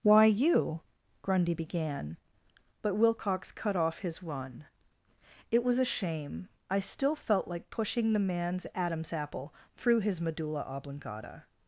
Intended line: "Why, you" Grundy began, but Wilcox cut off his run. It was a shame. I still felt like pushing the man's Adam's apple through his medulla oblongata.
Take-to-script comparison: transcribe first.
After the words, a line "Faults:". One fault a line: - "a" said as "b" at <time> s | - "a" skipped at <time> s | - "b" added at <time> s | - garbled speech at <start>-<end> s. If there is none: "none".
"Why, you" Grundy began, but Wilcox cut off his run. It was a shame. I still felt like pushing the man's Adam's apple through his medulla oblongata.
Faults:
none